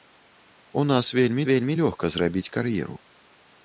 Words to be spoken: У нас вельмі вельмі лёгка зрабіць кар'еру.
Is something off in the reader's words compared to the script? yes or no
no